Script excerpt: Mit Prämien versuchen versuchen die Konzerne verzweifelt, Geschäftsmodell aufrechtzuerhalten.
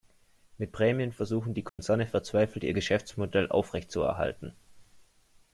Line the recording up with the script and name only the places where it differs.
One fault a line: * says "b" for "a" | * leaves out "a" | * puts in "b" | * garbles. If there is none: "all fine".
* leaves out "versuchen"
* puts in "ihr"